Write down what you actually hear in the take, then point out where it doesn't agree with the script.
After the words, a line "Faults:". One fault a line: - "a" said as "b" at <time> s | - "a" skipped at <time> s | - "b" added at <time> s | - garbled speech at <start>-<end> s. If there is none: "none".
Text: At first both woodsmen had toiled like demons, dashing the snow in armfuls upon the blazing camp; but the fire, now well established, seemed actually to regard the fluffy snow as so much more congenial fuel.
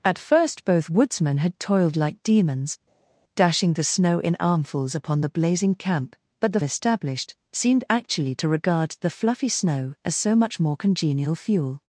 At first both woodsmen had toiled like demons, dashing the snow in armfuls upon the blazing camp; but the established, seemed actually to regard the fluffy snow as so much more congenial fuel.
Faults:
- "fire now well" skipped at 6.6 s